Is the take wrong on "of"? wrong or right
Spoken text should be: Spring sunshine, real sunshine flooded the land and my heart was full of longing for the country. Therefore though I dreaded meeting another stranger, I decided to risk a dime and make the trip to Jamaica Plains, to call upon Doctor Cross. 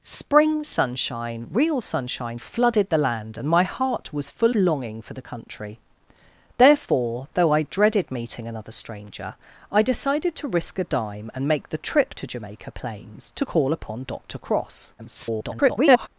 wrong